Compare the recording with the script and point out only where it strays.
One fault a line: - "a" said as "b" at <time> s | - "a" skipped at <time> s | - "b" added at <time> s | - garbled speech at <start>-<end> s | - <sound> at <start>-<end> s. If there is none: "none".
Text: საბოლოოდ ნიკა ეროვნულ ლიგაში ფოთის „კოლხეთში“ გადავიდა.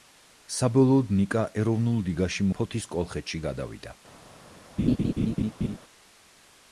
- laugh at 4.8-5.8 s